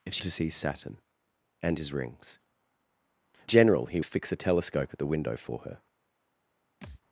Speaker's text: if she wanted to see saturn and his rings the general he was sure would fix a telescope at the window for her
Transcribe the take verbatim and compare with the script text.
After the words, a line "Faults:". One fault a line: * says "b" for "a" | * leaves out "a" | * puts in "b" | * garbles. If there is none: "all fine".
if she to see saturn and his rings general he fix a telescope at the window for her
Faults:
* leaves out "wanted"
* leaves out "the"
* leaves out "was sure would"